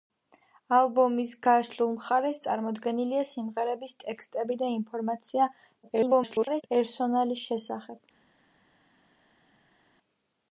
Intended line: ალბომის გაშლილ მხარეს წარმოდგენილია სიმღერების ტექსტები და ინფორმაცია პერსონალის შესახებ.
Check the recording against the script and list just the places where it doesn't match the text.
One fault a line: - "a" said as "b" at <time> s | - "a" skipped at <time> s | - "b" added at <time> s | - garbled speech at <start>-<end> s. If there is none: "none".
- garbled speech at 5.8-6.6 s